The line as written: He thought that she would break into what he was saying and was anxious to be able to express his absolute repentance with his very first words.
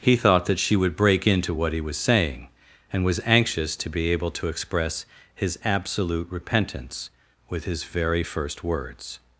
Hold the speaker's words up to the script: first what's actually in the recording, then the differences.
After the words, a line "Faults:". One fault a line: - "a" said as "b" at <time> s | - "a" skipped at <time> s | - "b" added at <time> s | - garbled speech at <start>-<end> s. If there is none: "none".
He thought that she would break into what he was saying and was anxious to be able to express his absolute repentance with his very first words.
Faults:
none